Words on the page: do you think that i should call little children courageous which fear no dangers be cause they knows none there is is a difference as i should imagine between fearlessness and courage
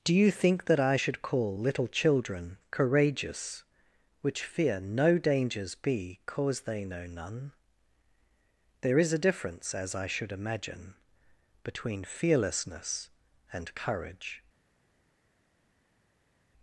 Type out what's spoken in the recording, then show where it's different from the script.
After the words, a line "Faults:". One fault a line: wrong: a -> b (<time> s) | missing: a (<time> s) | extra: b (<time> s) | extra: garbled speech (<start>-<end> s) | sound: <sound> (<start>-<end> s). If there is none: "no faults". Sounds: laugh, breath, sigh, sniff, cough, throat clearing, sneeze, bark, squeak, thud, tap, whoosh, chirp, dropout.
do you think that i should call little children courageous which fear no dangers be cause they know none there is a difference as i should imagine between fearlessness and courage
Faults:
wrong: knows -> know (6.8 s)
missing: is (9.1 s)